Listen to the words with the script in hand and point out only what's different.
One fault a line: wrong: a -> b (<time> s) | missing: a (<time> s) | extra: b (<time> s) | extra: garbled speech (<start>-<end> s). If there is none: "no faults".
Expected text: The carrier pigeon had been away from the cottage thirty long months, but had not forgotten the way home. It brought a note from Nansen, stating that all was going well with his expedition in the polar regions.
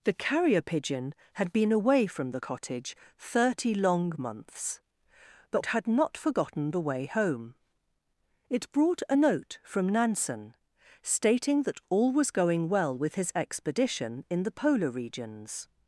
no faults